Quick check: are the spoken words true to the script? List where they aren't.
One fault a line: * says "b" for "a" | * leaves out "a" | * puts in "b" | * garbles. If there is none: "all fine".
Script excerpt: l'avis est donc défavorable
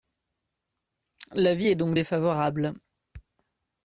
all fine